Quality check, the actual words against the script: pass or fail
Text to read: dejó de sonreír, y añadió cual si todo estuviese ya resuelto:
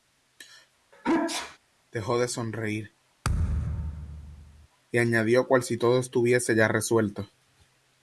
pass